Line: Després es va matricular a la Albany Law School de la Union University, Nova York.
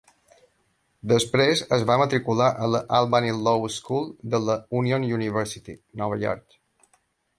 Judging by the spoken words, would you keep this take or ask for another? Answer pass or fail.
pass